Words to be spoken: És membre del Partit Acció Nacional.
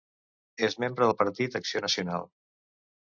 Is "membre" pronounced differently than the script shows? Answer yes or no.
no